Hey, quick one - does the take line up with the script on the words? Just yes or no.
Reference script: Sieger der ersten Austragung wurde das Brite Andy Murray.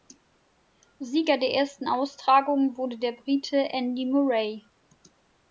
no